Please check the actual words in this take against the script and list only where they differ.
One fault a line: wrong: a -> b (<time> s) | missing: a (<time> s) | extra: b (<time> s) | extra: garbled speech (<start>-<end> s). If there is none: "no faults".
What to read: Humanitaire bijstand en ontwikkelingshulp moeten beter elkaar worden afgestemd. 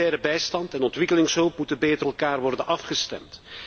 no faults